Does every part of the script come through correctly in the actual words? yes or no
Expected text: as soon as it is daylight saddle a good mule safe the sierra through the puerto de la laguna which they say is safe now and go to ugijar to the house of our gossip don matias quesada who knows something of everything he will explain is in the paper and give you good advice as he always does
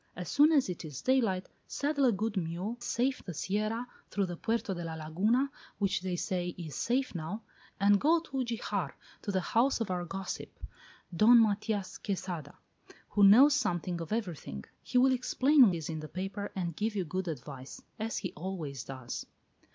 yes